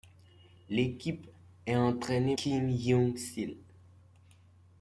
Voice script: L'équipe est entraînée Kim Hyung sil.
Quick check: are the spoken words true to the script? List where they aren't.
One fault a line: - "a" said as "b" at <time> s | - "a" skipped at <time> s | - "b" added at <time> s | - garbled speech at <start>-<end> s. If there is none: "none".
none